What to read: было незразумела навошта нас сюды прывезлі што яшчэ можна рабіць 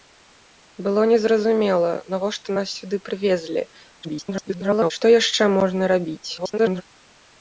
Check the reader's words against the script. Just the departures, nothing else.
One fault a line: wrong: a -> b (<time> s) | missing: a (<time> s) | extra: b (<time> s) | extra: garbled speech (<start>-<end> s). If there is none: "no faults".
extra: garbled speech (4.0-4.9 s)
extra: garbled speech (6.4-6.8 s)